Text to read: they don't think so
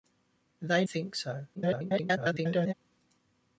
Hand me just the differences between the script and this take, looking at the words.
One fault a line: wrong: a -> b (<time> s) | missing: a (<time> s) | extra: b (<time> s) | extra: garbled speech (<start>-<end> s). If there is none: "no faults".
missing: don't (0.8 s)
extra: garbled speech (1.6-2.7 s)